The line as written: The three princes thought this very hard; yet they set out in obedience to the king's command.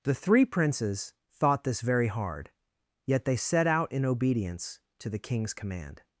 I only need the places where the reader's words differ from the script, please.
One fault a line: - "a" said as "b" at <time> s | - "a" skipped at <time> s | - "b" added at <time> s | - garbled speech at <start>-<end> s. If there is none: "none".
none